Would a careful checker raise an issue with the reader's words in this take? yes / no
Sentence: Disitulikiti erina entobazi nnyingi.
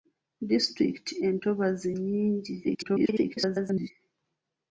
yes